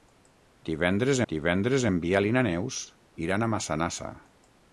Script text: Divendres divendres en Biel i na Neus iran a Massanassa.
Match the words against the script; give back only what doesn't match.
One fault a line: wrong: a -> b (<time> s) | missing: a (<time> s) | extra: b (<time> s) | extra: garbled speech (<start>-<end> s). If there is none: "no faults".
no faults